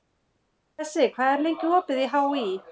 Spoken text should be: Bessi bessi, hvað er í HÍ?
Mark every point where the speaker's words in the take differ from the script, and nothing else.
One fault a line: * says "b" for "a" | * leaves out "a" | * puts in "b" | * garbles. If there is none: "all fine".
* leaves out "bessi"
* puts in "lengi opið"